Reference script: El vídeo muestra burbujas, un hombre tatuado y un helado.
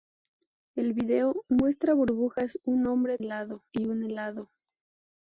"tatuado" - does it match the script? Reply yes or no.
no